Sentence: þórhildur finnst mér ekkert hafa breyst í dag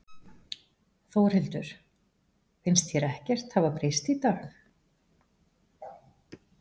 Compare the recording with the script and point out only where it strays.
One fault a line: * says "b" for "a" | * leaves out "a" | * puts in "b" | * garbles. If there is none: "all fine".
* says "þér" for "mér"